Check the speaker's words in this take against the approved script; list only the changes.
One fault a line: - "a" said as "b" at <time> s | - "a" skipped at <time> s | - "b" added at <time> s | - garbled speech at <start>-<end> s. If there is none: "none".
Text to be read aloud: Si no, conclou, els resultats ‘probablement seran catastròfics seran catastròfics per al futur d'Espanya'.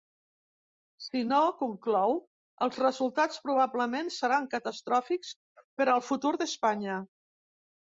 - "seran catastròfics" skipped at 5.4 s